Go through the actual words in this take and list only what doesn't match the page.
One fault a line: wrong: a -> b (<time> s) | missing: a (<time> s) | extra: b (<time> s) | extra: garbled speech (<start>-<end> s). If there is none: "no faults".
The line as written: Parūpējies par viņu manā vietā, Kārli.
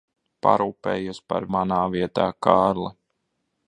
missing: viņu (1.4 s)